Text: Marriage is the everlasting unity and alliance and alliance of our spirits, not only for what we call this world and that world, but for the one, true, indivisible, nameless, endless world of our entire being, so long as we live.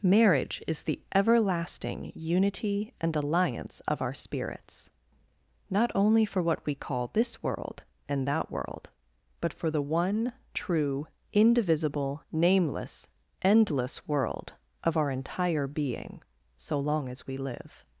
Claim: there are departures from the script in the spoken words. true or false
true